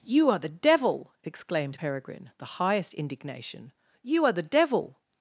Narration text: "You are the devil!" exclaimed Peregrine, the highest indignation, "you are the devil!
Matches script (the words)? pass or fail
pass